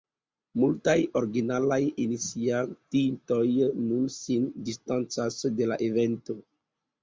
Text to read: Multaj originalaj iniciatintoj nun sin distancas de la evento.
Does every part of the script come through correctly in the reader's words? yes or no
yes